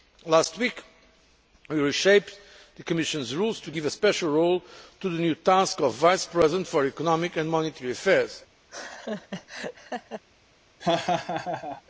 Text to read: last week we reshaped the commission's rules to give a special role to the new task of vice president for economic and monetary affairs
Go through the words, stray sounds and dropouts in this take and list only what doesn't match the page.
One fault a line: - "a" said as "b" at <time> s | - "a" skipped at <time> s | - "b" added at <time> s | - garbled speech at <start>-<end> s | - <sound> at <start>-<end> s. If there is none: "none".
- laugh at 8.7-10.2 s
- laugh at 10.8-11.8 s